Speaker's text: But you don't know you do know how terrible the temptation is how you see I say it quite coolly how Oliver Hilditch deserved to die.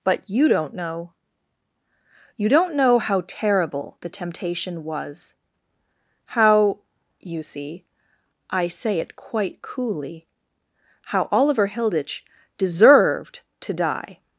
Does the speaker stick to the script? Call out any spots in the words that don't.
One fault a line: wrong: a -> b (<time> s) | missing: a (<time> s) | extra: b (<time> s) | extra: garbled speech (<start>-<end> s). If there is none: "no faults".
wrong: do -> don't (2.5 s)
wrong: is -> was (4.8 s)